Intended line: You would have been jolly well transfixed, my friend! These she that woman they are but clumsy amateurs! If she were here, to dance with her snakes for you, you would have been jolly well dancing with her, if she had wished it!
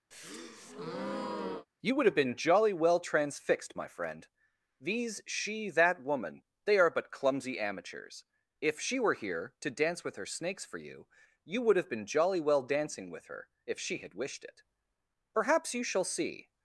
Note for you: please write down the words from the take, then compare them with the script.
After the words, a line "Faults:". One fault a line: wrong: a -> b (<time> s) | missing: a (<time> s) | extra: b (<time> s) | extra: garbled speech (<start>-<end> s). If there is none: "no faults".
You would have been jolly well transfixed, my friend! These she that woman they are but clumsy amateurs! If she were here, to dance with her snakes for you, you would have been jolly well dancing with her, if she had wished it! Perhaps you shall see
Faults:
extra: Perhaps you shall see (15.3 s)